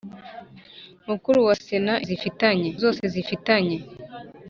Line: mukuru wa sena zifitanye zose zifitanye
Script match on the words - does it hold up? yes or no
yes